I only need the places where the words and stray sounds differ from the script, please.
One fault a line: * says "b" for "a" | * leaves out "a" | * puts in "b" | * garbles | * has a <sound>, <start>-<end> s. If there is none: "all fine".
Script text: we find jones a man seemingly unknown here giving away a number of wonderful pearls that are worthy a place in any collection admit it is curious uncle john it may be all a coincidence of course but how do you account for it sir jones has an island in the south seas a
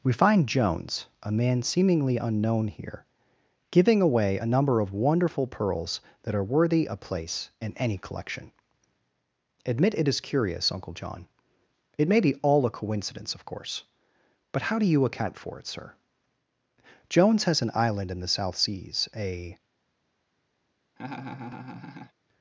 * has a laugh, 21.0-22.1 s